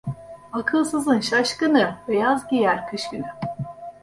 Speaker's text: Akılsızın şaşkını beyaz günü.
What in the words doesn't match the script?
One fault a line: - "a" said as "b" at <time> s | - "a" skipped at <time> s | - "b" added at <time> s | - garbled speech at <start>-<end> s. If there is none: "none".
- "giyer kış" added at 2.5 s